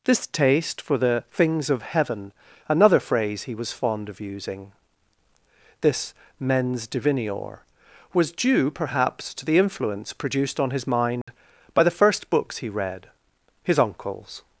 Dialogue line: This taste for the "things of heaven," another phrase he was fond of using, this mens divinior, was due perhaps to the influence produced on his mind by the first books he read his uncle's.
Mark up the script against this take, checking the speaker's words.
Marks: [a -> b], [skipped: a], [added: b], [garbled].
This taste for the "things of heaven," another phrase he was fond of using, this mens divinior, was due perhaps to the influence produced on his mind by the first books he read his uncle's.